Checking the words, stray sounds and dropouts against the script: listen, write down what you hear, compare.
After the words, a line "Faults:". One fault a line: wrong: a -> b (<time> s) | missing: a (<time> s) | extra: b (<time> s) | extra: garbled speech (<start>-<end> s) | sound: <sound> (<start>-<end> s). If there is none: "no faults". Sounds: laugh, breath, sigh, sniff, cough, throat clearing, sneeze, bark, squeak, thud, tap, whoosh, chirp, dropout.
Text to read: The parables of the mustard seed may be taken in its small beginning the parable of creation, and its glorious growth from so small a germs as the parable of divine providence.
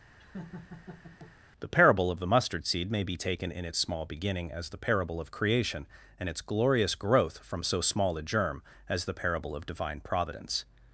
The parable of the mustard seed may be taken in its small beginning as the parable of creation, and its glorious growth from so small a germ as the parable of divine providence.
Faults:
sound: laugh (0.2-1.3 s)
wrong: parables -> parable (1.7 s)
extra: as (4.5 s)
wrong: germs -> germ (8.2 s)